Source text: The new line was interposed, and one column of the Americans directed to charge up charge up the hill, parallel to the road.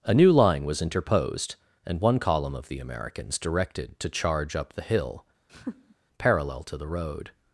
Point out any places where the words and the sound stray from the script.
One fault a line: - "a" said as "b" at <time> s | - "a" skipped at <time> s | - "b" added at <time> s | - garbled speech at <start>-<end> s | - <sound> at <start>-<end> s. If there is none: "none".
- "The" said as "A" at 0.0 s
- "charge up" skipped at 4.7 s
- laugh at 5.5-6.0 s